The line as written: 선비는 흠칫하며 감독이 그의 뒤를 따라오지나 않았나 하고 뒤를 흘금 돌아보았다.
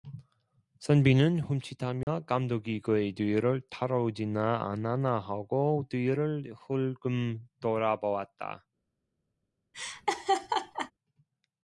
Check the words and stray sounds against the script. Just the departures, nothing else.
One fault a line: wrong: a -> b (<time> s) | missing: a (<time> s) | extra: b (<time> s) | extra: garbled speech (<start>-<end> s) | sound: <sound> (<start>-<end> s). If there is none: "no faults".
sound: dropout (2.0-2.1 s)
sound: laugh (9.7-10.9 s)